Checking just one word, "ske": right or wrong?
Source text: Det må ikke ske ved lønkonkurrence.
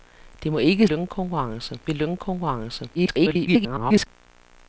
wrong